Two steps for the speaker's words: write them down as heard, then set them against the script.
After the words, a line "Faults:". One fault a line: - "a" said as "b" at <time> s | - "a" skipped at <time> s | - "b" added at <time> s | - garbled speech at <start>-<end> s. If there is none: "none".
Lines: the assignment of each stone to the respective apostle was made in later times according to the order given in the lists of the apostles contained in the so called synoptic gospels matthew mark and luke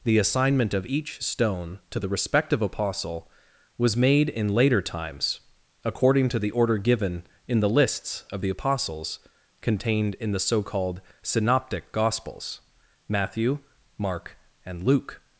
the assignment of each stone to the respective apostle was made in later times according to the order given in the lists of the apostles contained in the so called synoptic gospels matthew mark and luke
Faults:
none